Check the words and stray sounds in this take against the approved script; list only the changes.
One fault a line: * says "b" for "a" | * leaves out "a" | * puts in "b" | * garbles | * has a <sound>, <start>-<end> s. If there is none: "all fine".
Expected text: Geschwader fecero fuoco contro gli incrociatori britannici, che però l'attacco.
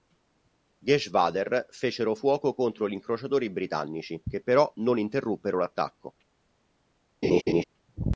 * puts in "non interruppero"
* has a laugh, 7.2-7.6 s